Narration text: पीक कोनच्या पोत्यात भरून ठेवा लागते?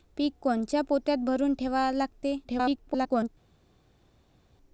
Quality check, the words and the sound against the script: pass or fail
fail